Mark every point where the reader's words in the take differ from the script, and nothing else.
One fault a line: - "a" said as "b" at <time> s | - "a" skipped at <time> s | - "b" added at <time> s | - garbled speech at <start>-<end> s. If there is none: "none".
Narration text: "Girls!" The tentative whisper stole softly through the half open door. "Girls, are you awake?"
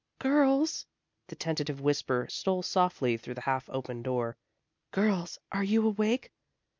none